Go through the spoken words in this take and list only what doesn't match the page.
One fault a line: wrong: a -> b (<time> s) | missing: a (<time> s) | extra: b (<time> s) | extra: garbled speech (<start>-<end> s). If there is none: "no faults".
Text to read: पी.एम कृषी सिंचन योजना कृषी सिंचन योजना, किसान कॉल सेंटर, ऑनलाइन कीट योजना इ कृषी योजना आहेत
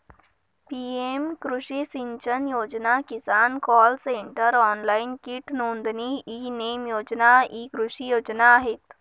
missing: कृषी सिंचन योजना (3.0 s)
extra: नोंदणी ई नेम (5.5 s)